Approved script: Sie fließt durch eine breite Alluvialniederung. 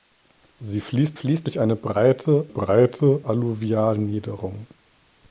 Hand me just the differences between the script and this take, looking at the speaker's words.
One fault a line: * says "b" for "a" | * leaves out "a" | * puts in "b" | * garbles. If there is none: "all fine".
* puts in "fließt"
* puts in "breite"